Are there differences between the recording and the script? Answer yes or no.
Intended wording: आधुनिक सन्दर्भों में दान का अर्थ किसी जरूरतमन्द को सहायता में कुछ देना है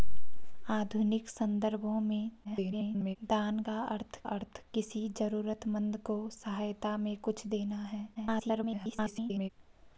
yes